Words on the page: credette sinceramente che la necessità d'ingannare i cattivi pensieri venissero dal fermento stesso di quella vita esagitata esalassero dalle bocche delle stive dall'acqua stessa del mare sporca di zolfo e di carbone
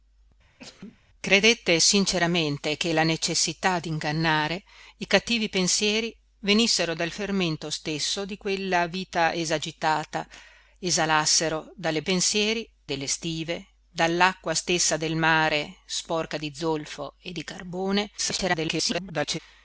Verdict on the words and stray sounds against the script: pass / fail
fail